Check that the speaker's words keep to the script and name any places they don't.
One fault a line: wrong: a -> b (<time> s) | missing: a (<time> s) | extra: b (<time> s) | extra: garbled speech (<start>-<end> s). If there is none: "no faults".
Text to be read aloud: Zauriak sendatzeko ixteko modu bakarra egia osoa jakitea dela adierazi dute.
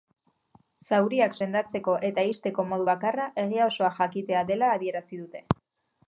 extra: eta (2.1 s)